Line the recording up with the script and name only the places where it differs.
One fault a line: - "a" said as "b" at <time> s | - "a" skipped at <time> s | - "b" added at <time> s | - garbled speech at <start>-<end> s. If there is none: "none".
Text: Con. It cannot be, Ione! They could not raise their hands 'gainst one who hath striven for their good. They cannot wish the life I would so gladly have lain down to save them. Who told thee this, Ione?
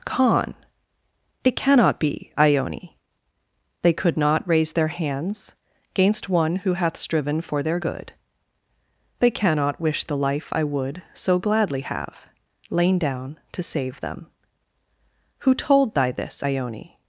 - "thee" said as "thy" at 15.9 s